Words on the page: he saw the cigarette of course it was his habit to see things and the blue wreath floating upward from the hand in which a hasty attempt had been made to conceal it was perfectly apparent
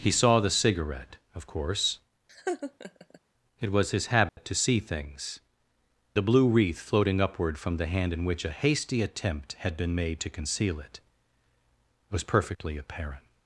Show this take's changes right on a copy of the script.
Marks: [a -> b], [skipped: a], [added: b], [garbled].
he saw the cigarette of course it was his habit to see things [skipped: and] the blue wreath floating upward from the hand in which a hasty attempt had been made to conceal it was perfectly apparent